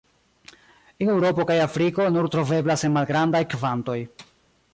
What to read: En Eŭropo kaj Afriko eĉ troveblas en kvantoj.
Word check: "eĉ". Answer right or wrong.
wrong